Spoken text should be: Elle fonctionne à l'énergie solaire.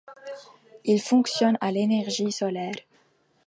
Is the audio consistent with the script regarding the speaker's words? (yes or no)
no